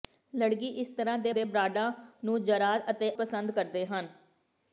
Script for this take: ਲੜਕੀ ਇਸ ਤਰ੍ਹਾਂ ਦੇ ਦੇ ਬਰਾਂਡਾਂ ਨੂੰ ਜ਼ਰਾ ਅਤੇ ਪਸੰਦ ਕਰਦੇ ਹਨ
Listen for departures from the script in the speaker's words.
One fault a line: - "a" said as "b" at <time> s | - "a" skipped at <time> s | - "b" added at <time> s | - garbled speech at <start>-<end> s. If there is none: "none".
none